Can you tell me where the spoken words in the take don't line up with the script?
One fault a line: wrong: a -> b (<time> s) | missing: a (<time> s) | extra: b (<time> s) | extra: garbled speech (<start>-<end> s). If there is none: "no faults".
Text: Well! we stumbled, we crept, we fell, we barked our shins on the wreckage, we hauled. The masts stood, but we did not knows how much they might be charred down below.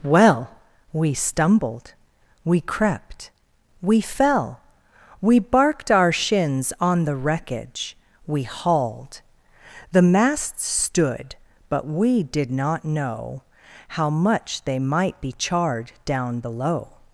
wrong: knows -> know (12.8 s)